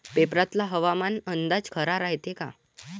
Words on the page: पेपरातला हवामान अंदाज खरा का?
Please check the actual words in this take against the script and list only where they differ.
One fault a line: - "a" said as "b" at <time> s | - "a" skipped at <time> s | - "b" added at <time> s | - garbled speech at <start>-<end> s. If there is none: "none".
- "रायते" added at 2.0 s